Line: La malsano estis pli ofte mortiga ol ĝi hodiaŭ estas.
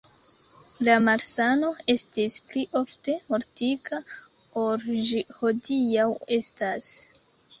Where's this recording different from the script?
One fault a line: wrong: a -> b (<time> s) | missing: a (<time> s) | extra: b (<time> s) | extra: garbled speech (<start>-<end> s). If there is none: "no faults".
no faults